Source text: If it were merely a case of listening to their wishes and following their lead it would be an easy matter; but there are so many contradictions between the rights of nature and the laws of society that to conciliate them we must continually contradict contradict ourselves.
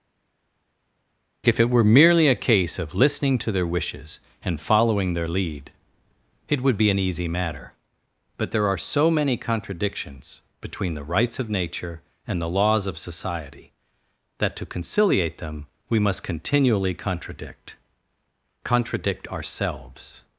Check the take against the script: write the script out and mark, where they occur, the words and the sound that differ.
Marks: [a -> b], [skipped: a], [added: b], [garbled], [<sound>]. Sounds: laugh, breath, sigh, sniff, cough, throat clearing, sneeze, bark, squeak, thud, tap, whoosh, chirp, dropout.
If it were merely a case of listening to their wishes and following their lead it would be an easy matter; but there are so many contradictions between the rights of nature and the laws of society that to conciliate them we must continually contradict contradict ourselves.